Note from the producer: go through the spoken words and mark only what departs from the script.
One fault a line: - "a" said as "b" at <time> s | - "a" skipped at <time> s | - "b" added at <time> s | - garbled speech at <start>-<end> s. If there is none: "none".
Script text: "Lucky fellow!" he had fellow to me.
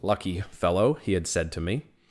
- "fellow" said as "said" at 1.3 s